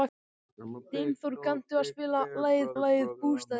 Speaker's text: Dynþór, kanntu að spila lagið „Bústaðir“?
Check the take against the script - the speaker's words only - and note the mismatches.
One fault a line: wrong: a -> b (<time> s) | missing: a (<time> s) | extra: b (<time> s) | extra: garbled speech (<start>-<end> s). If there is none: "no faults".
extra: lagið (2.8 s)